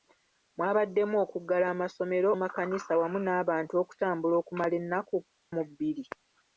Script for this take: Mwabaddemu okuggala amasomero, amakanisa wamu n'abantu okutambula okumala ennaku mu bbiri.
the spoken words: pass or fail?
pass